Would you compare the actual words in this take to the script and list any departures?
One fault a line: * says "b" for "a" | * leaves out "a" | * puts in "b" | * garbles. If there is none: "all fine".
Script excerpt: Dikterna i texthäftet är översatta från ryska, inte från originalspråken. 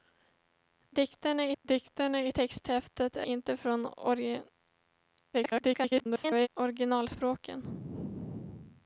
* puts in "dikterna"
* leaves out "översatta från ryska"
* garbles